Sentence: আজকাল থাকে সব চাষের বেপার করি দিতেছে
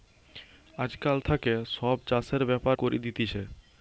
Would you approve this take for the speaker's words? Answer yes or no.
yes